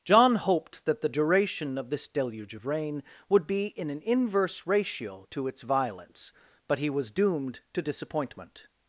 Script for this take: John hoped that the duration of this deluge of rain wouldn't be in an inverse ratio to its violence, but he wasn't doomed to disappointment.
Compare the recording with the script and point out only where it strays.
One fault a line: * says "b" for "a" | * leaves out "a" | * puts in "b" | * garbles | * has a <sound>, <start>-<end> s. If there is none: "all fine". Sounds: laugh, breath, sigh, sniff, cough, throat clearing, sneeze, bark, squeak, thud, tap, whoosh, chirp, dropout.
* says "would" for "wouldn't"
* says "was" for "wasn't"